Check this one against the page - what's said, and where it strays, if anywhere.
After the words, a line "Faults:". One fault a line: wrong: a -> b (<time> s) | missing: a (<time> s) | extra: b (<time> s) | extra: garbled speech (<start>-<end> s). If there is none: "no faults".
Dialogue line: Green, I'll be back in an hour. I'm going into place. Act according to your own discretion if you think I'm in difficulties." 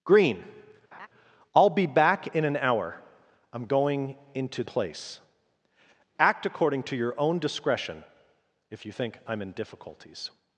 Green, I'll be back in an hour. I'm going into place. Act according to your own discretion if you think I'm in difficulties."
Faults:
no faults